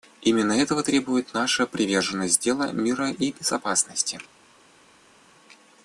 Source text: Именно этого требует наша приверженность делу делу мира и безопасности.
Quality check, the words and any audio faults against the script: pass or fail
fail